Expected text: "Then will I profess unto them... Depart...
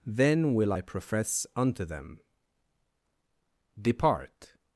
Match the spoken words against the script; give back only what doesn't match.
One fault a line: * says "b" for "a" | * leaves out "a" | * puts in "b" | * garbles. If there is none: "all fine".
all fine